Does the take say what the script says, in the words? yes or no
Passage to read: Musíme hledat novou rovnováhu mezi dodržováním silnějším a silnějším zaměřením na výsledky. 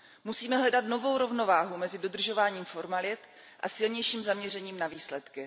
no